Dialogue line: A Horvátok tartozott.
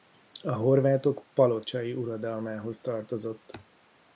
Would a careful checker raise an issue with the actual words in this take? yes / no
yes